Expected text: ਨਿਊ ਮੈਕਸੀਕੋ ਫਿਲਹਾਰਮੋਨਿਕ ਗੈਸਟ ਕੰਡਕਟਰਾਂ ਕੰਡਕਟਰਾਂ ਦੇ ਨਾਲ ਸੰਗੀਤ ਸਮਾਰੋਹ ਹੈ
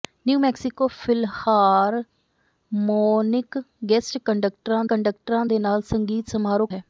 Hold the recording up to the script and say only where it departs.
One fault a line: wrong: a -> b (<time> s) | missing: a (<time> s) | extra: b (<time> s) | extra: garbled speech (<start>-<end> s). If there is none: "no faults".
no faults